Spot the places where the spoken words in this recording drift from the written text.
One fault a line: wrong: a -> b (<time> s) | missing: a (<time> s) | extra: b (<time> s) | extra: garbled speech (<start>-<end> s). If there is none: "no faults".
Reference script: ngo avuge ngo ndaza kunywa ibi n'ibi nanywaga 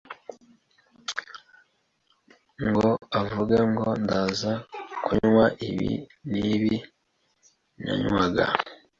no faults